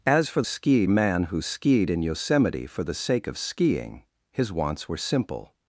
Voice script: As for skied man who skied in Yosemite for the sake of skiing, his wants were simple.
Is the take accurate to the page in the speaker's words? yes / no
yes